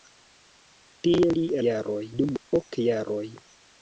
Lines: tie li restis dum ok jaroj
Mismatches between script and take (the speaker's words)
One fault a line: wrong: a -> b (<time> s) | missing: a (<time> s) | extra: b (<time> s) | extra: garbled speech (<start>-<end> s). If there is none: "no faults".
wrong: restis -> jaroj (1.7 s)